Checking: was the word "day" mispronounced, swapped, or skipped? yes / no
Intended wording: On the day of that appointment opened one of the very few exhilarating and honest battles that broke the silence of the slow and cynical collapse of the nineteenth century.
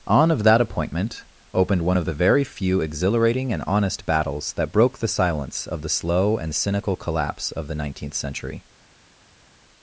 yes